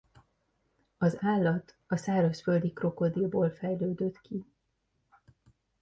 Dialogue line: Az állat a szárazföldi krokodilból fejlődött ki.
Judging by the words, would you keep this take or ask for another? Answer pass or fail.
pass